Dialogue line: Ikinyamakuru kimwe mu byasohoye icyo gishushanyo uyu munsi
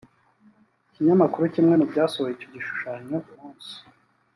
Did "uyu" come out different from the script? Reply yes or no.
yes